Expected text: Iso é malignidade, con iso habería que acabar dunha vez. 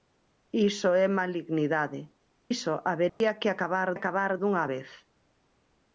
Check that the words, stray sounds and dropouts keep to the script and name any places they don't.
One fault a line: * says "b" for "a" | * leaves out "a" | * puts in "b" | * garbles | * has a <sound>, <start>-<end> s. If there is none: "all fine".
* leaves out "con"
* has a dropout, 3.1-3.2 s
* puts in "acabar"